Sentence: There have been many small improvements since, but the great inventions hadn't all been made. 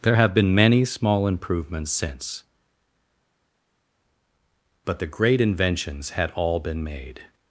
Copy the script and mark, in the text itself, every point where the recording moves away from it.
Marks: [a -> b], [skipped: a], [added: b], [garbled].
There have been many small improvements since, but the great inventions [hadn't -> had] all been made.